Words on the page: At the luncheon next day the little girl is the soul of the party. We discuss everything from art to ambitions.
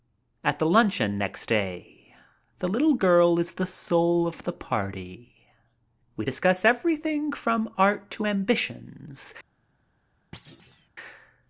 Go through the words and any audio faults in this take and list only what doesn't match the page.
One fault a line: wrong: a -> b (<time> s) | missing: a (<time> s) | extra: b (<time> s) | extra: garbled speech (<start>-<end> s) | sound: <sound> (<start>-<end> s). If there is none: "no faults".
sound: thud (10.3-10.9 s)